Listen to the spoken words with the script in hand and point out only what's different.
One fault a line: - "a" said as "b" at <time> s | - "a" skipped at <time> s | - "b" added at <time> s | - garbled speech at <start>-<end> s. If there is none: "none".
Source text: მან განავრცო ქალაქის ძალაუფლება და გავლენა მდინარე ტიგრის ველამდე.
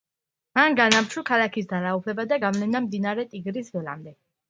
none